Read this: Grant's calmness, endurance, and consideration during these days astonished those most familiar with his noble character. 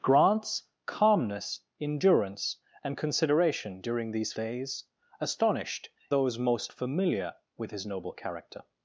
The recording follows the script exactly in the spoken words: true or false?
true